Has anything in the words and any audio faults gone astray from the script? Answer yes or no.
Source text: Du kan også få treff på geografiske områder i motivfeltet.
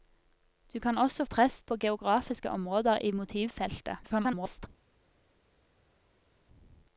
yes